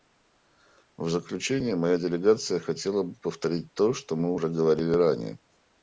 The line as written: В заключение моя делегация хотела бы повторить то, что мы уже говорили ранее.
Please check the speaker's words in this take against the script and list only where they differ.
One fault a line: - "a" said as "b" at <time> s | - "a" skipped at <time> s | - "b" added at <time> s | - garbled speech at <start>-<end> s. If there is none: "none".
none